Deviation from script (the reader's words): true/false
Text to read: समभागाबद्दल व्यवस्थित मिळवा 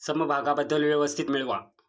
false